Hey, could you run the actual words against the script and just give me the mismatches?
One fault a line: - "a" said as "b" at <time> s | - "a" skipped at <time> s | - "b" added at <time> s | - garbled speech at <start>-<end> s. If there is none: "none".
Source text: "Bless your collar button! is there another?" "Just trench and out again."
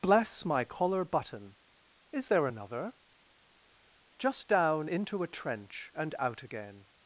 - "your" said as "my" at 0.5 s
- "down into a" added at 4.5 s